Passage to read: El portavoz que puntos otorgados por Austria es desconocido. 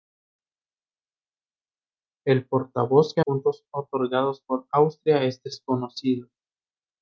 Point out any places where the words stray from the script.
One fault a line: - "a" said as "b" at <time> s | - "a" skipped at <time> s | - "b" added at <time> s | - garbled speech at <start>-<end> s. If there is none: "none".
none